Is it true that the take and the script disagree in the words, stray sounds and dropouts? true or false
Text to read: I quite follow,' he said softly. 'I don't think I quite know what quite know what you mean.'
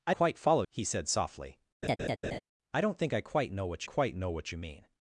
true